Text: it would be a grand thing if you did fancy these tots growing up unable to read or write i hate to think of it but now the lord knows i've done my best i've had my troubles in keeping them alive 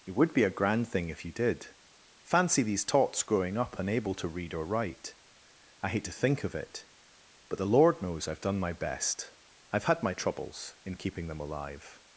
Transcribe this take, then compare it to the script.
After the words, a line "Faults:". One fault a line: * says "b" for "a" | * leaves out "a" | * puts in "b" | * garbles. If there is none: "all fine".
it would be a grand thing if you did fancy these tots growing up unable to read or write i hate to think of it but the lord knows i've done my best i've had my troubles in keeping them alive
Faults:
* leaves out "now"